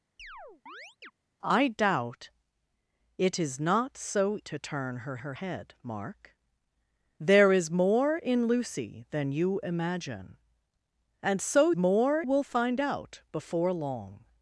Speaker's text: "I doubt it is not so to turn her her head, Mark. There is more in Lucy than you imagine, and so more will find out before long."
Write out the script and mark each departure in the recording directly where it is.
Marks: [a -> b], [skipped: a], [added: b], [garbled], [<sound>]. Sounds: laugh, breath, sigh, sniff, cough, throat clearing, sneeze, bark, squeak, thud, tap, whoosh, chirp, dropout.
[chirp] "I doubt it is not so to turn her her head, Mark. There is more in Lucy than you imagine, and so more will find out before long."